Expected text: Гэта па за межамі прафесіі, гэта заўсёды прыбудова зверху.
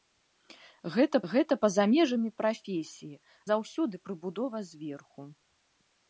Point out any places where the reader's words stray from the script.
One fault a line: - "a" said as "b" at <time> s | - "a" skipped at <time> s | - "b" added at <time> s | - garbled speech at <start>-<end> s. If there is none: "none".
- "гэта" added at 1.3 s
- "гэта" skipped at 3.2 s